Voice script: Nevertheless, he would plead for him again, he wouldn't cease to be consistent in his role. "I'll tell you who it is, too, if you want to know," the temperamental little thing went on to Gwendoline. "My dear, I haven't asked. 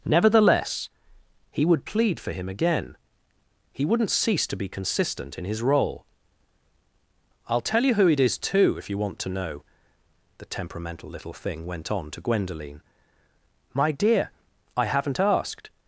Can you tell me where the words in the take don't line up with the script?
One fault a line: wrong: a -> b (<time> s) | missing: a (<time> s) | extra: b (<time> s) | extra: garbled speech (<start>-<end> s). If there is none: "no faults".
no faults